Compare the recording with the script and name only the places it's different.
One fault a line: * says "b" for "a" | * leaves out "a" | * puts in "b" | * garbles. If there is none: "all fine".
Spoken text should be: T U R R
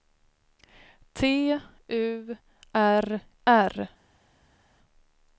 all fine